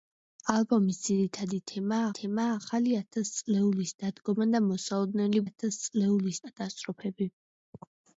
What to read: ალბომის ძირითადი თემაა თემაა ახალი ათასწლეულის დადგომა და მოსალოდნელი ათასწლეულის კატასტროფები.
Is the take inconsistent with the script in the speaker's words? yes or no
no